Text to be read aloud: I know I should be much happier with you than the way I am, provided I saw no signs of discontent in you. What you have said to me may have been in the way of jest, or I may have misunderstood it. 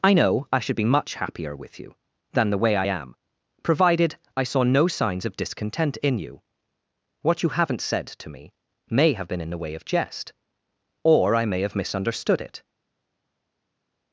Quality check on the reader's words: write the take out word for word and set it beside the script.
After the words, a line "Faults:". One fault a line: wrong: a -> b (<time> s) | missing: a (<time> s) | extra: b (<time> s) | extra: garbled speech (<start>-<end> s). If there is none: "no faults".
I know I should be much happier with you than the way I am, provided I saw no signs of discontent in you. What you haven't said to me may have been in the way of jest, or I may have misunderstood it.
Faults:
wrong: have -> haven't (7.5 s)